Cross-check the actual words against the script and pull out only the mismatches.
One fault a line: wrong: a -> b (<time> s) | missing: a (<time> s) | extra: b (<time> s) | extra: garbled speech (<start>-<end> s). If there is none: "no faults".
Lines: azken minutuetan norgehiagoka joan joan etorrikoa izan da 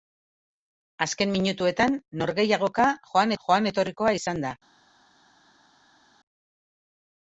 no faults